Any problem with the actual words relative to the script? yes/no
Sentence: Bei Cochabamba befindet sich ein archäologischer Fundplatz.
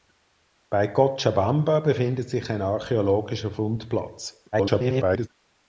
yes